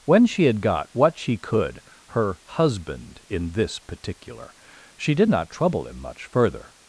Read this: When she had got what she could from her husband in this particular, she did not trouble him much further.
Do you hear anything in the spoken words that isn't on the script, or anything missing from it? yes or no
yes